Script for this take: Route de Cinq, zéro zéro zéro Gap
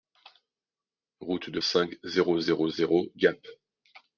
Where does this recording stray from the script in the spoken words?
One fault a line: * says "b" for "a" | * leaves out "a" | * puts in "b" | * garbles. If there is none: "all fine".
all fine